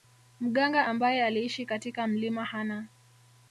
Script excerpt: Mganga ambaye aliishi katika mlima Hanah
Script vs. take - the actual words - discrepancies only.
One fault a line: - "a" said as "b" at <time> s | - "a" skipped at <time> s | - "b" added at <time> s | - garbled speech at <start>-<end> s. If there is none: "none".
none